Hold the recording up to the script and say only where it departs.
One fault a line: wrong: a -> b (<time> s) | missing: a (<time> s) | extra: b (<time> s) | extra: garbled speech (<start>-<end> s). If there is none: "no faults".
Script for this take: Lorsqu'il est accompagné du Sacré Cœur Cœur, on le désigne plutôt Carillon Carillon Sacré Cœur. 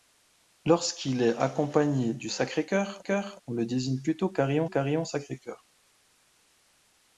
no faults